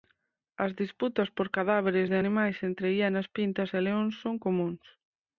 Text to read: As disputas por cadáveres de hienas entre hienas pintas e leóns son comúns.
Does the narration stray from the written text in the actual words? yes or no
yes